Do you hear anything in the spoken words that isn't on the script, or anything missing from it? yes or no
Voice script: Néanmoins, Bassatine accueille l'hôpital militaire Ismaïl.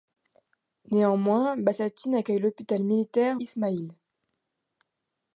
no